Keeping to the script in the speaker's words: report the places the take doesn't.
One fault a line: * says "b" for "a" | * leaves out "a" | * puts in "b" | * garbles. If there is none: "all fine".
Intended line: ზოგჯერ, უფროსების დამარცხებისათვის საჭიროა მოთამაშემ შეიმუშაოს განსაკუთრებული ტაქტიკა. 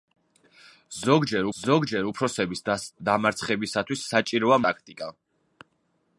* puts in "ზოგჯერ"
* leaves out "მოთამაშემ შეიმუშაოს განსაკუთრებული"